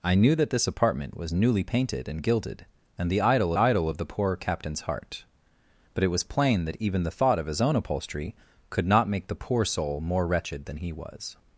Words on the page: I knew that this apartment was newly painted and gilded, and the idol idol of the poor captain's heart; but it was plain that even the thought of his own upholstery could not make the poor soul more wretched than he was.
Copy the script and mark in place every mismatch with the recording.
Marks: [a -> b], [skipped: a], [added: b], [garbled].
I knew that this apartment was newly painted and gilded, and the idol idol of the poor captain's heart; but it was plain that even the thought of his own upholstery could not make the poor soul more wretched than he was.